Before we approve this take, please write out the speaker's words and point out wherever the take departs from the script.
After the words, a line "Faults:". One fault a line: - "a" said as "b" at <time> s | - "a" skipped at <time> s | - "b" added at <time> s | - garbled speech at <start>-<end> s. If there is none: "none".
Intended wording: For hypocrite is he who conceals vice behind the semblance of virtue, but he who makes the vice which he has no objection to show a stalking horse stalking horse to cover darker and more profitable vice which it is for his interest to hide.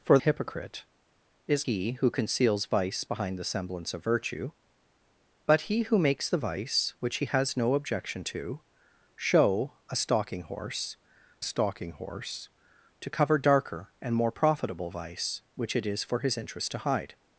For hypocrite is he who conceals vice behind the semblance of virtue, but he who makes the vice which he has no objection to show a stalking horse stalking horse to cover darker and more profitable vice which it is for his interest to hide.
Faults:
none